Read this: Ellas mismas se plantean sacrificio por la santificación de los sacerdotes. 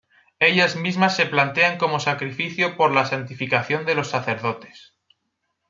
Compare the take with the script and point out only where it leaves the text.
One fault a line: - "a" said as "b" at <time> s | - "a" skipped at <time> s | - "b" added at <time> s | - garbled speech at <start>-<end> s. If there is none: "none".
- "como" added at 1.8 s